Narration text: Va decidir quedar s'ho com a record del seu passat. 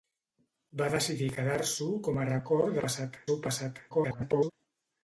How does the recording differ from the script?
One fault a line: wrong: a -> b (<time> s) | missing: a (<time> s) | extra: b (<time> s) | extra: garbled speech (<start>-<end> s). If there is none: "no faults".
wrong: del -> passat (2.9 s)
extra: garbled speech (3.9-4.5 s)